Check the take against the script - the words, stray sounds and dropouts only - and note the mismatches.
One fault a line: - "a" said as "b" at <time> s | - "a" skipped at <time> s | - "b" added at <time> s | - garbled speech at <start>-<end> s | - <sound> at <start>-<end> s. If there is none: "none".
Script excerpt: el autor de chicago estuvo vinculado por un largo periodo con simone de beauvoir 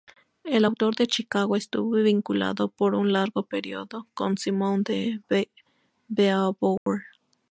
- dropout at 6.8-6.9 s